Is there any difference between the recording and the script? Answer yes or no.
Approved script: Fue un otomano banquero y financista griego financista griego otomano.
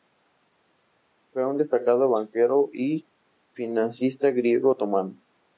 yes